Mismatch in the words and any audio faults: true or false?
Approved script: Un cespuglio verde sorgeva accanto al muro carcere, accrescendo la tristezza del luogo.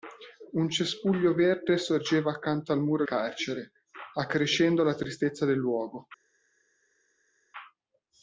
false